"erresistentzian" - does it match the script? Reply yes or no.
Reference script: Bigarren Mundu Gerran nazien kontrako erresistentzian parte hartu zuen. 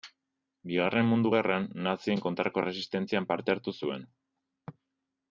yes